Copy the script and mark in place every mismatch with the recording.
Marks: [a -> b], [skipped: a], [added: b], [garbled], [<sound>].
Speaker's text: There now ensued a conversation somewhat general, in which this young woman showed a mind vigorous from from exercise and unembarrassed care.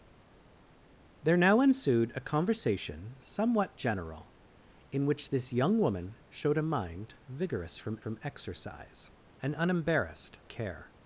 There now ensued a conversation somewhat general, in which this young woman showed a mind vigorous from from exercise and unembarrassed care.